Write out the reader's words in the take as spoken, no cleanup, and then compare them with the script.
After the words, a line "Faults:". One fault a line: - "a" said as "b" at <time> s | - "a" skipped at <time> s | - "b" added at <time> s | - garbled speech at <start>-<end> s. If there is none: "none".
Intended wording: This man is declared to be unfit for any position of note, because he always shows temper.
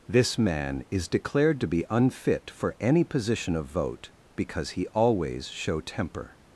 This man is declared to be unfit for any position of vote, because he always show temper.
Faults:
- "note" said as "vote" at 3.7 s
- "shows" said as "show" at 5.5 s